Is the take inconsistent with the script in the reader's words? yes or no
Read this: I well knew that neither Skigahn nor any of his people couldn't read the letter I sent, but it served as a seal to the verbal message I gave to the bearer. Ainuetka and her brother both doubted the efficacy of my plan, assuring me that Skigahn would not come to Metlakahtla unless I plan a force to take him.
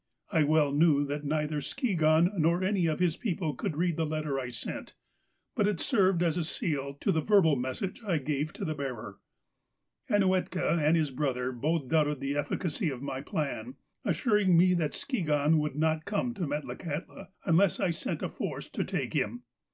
yes